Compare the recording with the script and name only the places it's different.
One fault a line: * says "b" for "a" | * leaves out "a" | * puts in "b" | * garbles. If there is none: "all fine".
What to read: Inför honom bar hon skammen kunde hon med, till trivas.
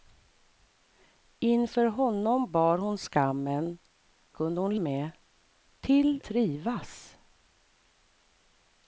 all fine